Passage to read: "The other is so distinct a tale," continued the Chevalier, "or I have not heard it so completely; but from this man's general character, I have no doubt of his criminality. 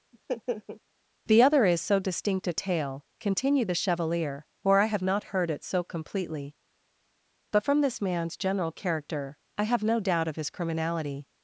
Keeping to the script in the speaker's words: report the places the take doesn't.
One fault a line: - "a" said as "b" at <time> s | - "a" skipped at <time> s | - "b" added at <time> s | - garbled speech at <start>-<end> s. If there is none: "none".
none